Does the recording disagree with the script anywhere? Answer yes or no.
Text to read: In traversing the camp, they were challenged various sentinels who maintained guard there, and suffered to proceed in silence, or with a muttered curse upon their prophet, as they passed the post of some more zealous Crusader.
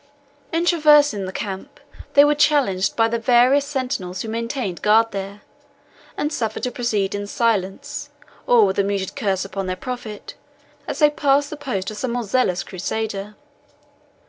yes